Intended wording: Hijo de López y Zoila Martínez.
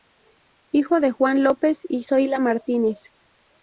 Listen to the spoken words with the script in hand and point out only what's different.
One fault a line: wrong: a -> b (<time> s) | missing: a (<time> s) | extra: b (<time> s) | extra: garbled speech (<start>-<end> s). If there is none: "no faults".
extra: Juan (1.1 s)